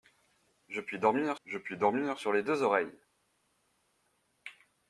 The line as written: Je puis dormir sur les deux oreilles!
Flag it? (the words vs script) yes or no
yes